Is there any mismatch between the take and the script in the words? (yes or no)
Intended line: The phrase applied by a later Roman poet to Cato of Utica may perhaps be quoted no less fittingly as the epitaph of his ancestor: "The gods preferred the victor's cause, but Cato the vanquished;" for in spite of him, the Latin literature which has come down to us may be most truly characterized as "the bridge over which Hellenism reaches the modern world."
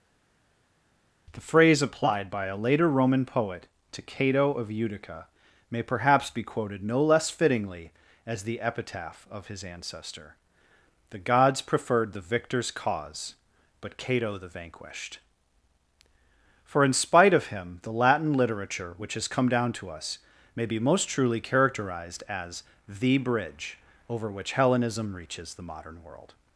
no